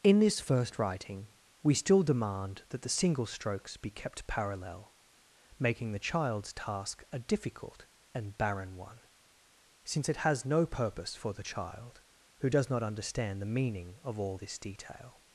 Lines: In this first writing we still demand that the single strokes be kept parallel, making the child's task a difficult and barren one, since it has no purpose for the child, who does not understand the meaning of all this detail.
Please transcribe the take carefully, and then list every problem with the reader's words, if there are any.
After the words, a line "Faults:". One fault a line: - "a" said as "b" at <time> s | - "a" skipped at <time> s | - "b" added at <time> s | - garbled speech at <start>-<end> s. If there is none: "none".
In this first writing we still demand that the single strokes be kept parallel, making the child's task a difficult and barren one, since it has no purpose for the child, who does not understand the meaning of all this detail.
Faults:
none